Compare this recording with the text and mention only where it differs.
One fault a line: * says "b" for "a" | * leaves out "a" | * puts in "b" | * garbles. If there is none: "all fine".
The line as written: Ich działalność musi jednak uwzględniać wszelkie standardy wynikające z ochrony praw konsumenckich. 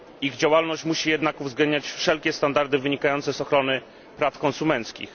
all fine